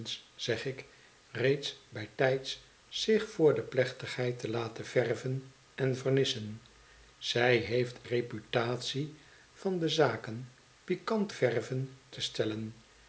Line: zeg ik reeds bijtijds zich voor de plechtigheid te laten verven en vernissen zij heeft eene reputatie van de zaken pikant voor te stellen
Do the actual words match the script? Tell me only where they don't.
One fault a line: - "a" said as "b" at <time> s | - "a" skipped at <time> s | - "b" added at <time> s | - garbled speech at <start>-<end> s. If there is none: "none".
- "eene" skipped at 8.0 s
- "voor" said as "verven" at 11.3 s